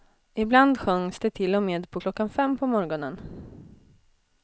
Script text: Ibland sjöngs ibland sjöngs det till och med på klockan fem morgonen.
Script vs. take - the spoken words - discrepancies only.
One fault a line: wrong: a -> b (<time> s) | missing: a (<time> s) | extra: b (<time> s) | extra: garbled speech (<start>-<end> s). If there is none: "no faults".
missing: ibland sjöngs (1.2 s)
extra: på (2.6 s)